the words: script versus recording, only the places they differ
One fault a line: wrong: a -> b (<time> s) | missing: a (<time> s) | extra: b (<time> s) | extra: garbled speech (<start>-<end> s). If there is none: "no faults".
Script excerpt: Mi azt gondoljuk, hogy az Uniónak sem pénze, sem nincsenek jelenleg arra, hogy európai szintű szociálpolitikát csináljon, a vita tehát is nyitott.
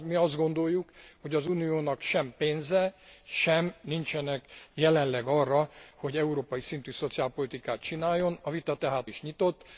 no faults